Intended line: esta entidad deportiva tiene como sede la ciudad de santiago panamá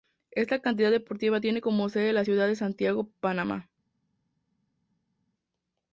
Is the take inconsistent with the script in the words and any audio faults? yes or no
no